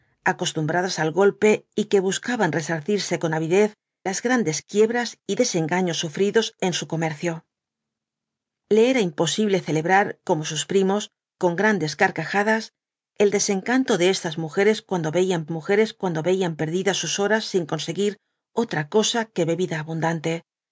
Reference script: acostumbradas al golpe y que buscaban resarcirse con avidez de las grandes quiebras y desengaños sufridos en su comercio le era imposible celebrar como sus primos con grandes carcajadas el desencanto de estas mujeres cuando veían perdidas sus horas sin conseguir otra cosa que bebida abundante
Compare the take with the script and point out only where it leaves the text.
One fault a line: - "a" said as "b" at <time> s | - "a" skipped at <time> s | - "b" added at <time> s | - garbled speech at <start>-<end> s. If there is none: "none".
- "de" skipped at 3.8 s
- "mujeres cuando veían" added at 15.5 s